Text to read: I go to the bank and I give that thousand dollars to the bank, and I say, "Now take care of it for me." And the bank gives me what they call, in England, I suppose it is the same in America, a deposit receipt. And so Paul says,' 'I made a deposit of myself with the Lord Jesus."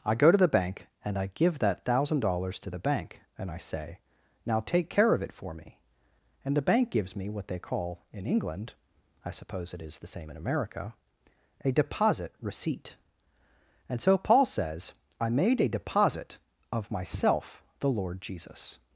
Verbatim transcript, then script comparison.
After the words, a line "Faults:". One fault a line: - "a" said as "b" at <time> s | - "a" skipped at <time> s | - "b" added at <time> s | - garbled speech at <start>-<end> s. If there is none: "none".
I go to the bank and I give that thousand dollars to the bank, and I say, "Now take care of it for me." And the bank gives me what they call, in England, I suppose it is the same in America, a deposit receipt. And so Paul says,' 'I made a deposit of myself the Lord Jesus."
Faults:
- "with" skipped at 17.6 s